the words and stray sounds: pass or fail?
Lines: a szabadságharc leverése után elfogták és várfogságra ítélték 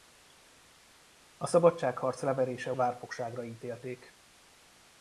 fail